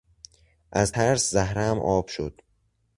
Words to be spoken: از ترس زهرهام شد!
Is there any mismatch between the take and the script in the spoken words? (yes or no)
yes